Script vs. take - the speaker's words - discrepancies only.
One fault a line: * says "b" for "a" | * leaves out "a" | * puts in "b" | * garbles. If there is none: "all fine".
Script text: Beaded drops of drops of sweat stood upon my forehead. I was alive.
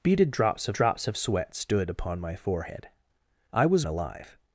all fine